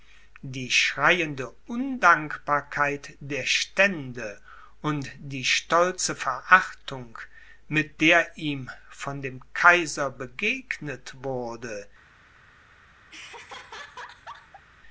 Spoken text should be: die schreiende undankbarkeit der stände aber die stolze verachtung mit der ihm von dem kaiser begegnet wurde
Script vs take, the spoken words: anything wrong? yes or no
yes